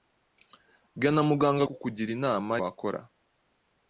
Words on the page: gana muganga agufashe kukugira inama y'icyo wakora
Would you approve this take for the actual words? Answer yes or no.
no